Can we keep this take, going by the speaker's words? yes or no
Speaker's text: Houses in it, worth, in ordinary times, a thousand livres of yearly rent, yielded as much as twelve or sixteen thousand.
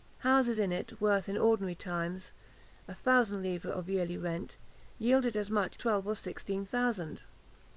no